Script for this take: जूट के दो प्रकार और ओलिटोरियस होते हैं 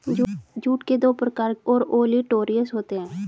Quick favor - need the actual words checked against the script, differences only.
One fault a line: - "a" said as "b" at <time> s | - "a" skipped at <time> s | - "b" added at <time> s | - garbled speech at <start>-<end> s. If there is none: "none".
none